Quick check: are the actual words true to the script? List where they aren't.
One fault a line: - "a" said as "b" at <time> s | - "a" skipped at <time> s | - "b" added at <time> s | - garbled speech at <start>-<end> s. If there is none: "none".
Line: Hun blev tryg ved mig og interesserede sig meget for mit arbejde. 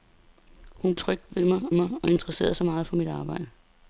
- "blev" skipped at 0.9 s
- "mig" added at 1.7 s